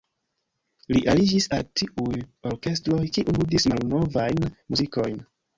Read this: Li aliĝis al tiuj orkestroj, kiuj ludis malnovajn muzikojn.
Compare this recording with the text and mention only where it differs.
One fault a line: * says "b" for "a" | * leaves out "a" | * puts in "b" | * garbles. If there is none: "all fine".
all fine